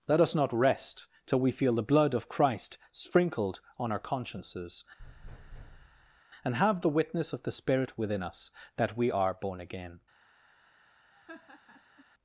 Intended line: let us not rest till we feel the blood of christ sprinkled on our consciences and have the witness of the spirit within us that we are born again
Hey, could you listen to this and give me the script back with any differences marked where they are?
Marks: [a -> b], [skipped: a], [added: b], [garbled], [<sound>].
let us not rest till we feel the blood of christ sprinkled on our consciences [thud] and have the witness of the spirit within us that we are born again [laugh]